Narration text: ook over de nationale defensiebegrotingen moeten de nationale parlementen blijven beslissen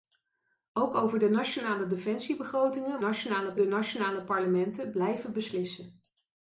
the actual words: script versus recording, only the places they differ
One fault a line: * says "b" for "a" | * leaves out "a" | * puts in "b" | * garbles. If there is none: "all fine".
* says "nationale" for "moeten"